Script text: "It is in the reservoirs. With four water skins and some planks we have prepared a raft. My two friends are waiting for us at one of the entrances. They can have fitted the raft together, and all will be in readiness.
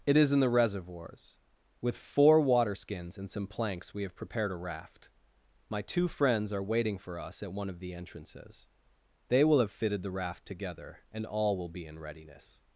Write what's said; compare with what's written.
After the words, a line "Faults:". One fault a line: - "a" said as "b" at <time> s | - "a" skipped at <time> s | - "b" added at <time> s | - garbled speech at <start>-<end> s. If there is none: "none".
"It is in the reservoirs. With four water skins and some planks we have prepared a raft. My two friends are waiting for us at one of the entrances. They will have fitted the raft together, and all will be in readiness.
Faults:
- "can" said as "will" at 9.4 s